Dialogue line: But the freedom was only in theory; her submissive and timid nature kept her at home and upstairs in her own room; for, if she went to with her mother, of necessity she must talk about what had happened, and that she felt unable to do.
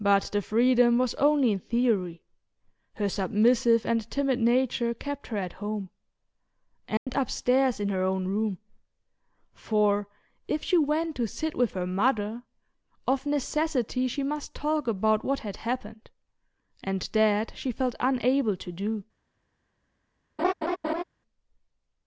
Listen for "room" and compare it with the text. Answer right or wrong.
right